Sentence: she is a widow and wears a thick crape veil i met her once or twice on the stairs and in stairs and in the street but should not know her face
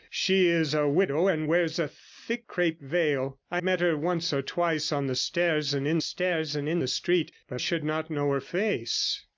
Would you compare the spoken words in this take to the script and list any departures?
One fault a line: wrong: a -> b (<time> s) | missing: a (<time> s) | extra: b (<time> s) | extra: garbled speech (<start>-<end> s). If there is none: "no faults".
no faults